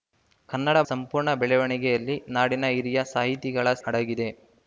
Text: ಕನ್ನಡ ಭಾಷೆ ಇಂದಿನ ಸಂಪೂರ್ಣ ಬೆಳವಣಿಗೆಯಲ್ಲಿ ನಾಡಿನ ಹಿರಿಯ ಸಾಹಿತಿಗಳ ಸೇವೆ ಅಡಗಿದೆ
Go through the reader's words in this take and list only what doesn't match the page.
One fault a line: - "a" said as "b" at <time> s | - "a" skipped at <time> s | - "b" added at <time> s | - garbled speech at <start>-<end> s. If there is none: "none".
- "ಭಾಷೆ ಇಂದಿನ" skipped at 0.8 s
- "ಸೇವೆ" skipped at 3.7 s